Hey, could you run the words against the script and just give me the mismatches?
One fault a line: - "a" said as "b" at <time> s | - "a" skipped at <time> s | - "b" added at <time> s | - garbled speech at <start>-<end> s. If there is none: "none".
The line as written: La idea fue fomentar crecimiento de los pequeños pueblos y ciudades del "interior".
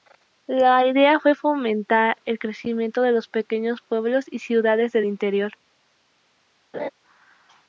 - "el" added at 2.2 s